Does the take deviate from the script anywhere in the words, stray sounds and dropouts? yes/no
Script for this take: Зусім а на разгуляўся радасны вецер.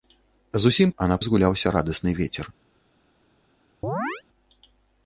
yes